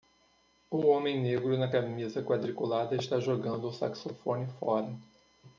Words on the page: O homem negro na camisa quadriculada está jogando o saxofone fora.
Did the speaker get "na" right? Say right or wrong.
right